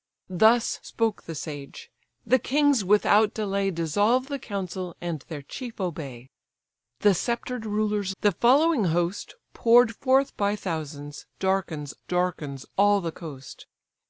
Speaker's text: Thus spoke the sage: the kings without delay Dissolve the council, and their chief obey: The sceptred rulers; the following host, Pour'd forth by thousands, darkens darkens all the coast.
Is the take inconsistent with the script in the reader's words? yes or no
no